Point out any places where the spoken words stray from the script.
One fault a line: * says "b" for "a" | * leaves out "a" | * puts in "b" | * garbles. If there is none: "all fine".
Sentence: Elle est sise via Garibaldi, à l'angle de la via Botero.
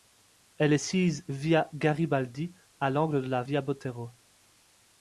all fine